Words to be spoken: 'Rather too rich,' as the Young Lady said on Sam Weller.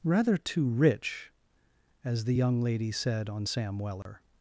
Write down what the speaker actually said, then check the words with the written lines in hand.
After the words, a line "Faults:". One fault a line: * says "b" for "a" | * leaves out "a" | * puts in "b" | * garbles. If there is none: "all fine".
'Rather too rich,' as the Young Lady said on Sam Weller.
Faults:
all fine